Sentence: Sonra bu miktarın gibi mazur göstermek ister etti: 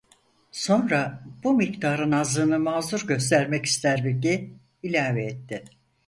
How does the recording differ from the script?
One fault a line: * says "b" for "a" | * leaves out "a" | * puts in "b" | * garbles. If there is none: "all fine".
* says "azlığını" for "gibi"
* puts in "gibi ilave"